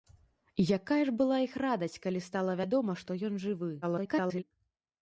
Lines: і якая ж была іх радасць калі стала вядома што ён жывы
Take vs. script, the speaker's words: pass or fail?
fail